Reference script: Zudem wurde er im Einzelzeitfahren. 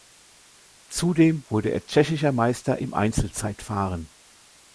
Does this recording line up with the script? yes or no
no